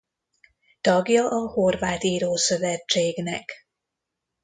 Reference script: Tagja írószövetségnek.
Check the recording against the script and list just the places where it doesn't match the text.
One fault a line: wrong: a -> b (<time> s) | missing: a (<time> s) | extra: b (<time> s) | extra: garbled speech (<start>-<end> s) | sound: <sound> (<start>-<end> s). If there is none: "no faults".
extra: a horvát (1.3 s)